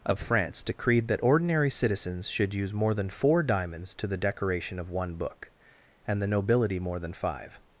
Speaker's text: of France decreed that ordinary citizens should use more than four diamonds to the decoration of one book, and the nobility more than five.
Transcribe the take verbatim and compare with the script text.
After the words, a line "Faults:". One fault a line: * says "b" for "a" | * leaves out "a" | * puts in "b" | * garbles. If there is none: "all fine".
of France decreed that ordinary citizens should use more than four diamonds to the decoration of one book, and the nobility more than five.
Faults:
all fine